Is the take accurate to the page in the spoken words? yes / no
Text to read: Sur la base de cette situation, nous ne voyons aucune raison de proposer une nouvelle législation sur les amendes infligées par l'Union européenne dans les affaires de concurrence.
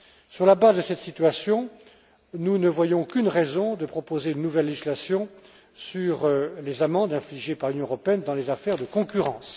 yes